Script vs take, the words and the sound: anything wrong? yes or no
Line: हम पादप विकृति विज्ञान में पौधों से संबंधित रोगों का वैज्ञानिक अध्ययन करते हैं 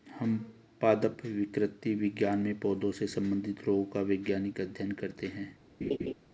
yes